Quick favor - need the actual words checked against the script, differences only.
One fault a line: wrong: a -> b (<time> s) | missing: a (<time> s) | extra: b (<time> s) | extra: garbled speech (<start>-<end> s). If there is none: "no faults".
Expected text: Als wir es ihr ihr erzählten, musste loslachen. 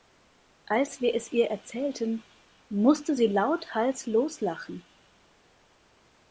missing: ihr (1.5 s)
extra: sie lauthals (3.1 s)